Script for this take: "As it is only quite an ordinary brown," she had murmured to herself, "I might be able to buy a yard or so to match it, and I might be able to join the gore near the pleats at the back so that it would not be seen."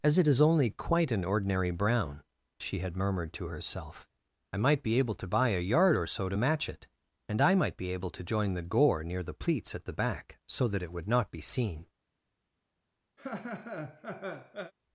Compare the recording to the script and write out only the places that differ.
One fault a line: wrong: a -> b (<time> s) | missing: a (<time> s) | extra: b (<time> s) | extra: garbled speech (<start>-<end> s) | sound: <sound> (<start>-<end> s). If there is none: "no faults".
sound: laugh (13.2-14.7 s)